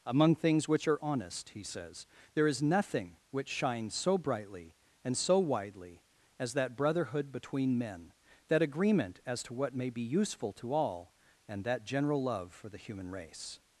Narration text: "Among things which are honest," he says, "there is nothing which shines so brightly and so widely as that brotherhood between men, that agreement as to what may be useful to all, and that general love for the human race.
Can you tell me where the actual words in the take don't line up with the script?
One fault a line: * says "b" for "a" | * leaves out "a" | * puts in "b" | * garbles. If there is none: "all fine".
all fine